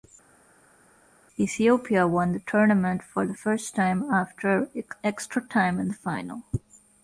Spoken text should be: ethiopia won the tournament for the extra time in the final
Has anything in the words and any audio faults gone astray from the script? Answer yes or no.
yes